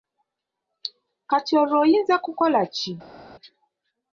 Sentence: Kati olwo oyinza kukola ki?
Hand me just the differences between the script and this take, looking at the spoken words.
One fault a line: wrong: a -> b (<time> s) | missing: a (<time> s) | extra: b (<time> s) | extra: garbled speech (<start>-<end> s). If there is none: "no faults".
no faults